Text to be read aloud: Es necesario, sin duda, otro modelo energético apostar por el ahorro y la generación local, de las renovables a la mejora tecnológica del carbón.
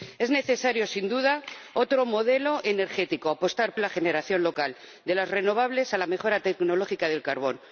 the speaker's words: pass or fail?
fail